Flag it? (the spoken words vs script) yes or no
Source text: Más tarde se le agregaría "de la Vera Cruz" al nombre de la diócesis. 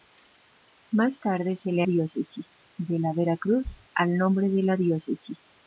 yes